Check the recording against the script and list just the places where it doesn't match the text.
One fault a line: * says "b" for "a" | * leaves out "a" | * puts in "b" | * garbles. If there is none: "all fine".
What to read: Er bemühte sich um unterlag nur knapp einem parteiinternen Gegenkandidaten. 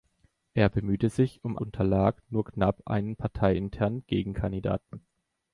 all fine